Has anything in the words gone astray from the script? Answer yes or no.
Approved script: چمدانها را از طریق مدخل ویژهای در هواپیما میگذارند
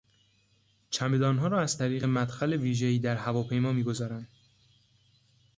no